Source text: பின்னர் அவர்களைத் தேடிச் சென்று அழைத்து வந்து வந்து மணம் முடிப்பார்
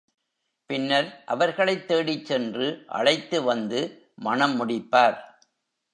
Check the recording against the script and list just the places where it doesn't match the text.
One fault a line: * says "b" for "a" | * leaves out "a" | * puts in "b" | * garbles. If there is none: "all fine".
* leaves out "வந்து"